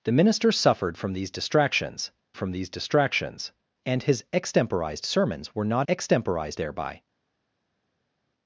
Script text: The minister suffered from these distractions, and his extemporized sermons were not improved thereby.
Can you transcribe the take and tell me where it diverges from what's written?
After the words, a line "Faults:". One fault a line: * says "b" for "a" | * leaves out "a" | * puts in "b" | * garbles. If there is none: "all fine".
The minister suffered from these distractions from these distractions, and his extemporized sermons were not extemporized thereby.
Faults:
* puts in "from these distractions"
* says "extemporized" for "improved"